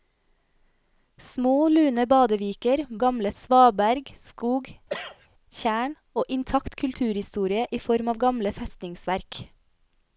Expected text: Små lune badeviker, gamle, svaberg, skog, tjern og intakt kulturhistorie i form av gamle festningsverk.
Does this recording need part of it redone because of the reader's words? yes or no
no